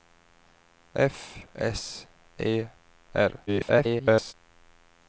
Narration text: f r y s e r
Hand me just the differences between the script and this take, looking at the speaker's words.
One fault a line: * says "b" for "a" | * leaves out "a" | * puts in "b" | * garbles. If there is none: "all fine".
* leaves out "r y"
* garbles